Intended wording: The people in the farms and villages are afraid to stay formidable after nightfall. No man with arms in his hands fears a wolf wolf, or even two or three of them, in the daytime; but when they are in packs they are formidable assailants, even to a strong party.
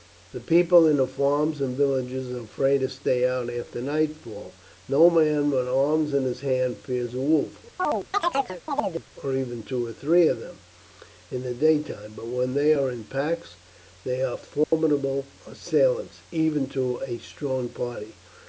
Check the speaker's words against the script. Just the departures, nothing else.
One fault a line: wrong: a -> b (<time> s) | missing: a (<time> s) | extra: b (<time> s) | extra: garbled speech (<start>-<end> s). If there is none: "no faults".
wrong: formidable -> out (3.3 s)
missing: wolf (7.6 s)